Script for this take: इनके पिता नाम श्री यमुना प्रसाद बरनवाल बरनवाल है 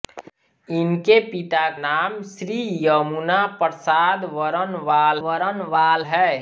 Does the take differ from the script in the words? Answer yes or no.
no